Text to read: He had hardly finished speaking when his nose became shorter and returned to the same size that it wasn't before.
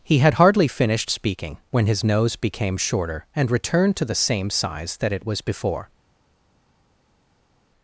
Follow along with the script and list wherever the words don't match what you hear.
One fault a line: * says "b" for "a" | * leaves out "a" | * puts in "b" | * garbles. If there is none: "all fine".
* says "was" for "wasn't"